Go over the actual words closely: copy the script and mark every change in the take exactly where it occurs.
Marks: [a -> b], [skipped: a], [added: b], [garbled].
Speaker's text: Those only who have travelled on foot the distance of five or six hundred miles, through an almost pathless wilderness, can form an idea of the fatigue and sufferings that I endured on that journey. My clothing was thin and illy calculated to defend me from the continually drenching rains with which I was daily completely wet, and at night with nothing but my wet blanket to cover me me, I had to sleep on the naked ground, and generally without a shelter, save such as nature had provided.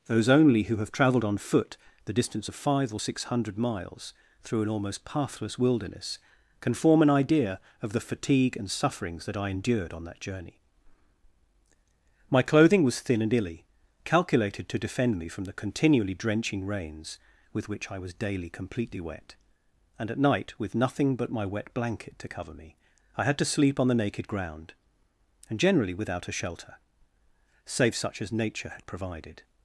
Those only who have travelled on foot the distance of five or six hundred miles, through an almost pathless wilderness, can form an idea of the fatigue and sufferings that I endured on that journey. My clothing was thin and illy calculated to defend me from the continually drenching rains with which I was daily completely wet, and at night with nothing but my wet blanket to cover me [skipped: me,] I had to sleep on the naked ground, and generally without a shelter, save such as nature had provided.